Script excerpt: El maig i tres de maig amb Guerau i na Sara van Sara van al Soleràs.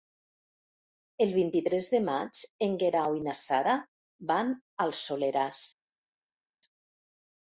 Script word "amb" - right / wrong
wrong